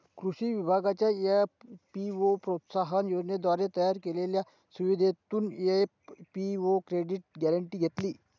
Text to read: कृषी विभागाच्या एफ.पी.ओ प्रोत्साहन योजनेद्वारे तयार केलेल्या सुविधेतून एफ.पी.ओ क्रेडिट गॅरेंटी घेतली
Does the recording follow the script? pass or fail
pass